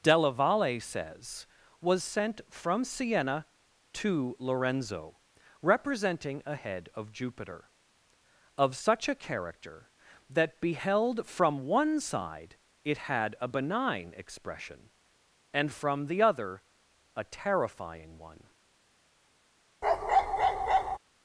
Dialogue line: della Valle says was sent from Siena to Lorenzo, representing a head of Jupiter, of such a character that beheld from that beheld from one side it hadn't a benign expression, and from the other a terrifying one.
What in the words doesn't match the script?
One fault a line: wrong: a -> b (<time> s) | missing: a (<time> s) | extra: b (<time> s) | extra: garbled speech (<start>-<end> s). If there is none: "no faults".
missing: that beheld from (11.7 s)
wrong: hadn't -> had (13.0 s)